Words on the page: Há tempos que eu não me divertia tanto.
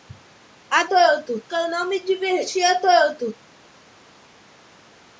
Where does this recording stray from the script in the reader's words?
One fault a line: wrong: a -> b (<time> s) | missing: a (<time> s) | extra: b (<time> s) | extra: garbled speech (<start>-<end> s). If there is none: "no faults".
wrong: tempos -> tanto (0.9 s)